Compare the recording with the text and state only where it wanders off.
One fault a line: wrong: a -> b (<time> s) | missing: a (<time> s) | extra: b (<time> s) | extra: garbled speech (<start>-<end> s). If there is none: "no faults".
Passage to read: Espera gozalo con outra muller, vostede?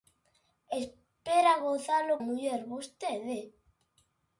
missing: con outra (2.1 s)